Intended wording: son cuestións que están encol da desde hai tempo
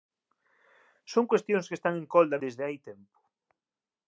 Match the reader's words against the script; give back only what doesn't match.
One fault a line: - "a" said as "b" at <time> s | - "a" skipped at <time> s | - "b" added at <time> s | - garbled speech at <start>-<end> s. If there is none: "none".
none